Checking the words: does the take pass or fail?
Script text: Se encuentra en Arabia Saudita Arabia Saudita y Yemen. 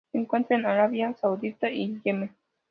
fail